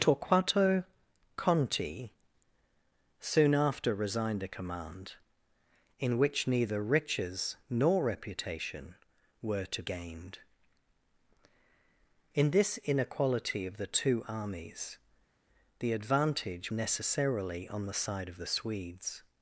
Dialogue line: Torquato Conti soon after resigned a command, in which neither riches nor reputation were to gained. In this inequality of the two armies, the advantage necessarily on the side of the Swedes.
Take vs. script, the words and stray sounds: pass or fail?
pass